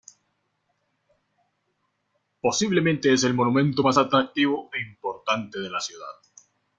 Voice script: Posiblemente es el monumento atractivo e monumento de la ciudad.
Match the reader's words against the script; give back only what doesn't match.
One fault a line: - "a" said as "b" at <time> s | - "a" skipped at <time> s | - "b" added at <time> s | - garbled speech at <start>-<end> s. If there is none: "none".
- "más" added at 3.8 s
- "monumento" said as "importante" at 4.8 s